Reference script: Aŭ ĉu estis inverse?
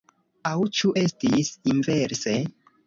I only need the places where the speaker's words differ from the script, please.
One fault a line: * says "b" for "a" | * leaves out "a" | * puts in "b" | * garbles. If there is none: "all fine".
all fine